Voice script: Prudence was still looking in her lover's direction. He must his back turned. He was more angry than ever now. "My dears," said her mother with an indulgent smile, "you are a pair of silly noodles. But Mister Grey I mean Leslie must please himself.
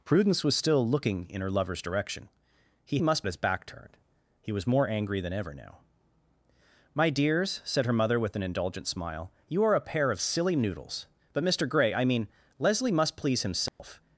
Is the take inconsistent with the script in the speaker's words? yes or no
no